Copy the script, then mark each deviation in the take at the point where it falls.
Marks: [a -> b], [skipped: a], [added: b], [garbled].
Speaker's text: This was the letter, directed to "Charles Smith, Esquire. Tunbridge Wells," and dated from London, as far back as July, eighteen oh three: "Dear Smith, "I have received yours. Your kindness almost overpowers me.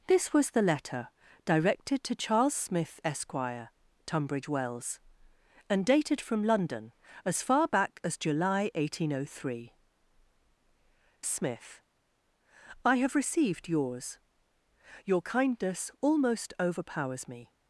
This was the letter, directed to "Charles Smith, Esquire. Tunbridge Wells," and dated from London, as far back as July, eighteen oh three: [skipped: "Dear] Smith, "I have received yours. Your kindness almost overpowers me.